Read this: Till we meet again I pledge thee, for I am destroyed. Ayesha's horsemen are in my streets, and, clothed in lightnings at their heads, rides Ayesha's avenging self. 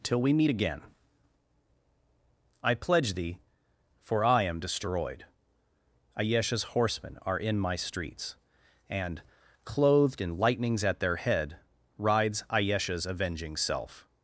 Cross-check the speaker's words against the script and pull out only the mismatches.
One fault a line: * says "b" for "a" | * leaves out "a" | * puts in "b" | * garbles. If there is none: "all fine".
* says "head" for "heads"